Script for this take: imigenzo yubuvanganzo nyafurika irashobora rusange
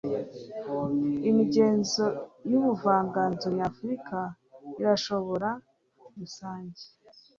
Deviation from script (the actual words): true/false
false